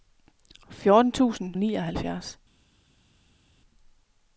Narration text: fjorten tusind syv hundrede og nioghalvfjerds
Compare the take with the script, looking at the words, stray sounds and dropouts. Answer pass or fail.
fail